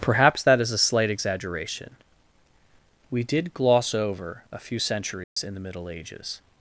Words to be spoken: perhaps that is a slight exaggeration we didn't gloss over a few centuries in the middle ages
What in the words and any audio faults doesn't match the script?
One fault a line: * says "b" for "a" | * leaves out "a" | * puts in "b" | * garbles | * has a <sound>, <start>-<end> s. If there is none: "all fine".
* says "did" for "didn't"
* has a dropout, 5.2-5.4 s